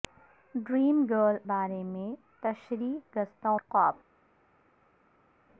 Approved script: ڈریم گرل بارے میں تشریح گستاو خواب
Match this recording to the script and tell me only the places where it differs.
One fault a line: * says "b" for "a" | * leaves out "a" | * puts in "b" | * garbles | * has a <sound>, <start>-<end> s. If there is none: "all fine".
all fine